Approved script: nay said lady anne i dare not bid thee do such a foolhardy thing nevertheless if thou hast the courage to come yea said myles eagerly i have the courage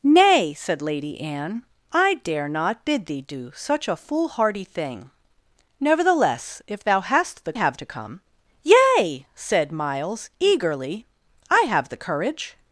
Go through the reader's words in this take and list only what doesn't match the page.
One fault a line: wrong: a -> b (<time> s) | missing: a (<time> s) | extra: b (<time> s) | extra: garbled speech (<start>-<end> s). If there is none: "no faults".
wrong: courage -> have (7.5 s)